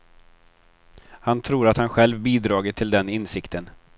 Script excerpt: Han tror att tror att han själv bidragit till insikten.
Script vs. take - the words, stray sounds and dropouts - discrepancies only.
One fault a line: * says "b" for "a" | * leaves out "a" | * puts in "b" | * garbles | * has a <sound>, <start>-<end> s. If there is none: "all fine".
* leaves out "tror att"
* puts in "den"